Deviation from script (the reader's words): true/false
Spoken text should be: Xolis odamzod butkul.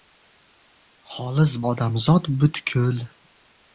false